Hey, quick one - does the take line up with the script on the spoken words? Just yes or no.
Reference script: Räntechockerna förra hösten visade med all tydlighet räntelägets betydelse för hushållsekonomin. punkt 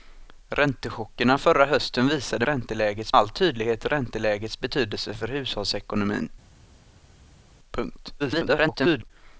no